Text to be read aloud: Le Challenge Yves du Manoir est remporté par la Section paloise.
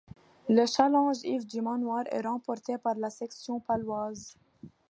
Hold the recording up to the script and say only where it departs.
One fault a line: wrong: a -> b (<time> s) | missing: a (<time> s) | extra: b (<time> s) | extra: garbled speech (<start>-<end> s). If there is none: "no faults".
no faults